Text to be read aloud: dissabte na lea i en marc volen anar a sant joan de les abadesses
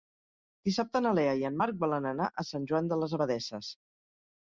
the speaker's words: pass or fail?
pass